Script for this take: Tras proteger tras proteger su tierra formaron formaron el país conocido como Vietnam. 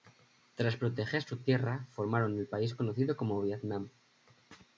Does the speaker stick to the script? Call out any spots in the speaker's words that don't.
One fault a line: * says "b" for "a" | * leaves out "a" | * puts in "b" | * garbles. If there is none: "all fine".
* leaves out "tras proteger"
* leaves out "formaron"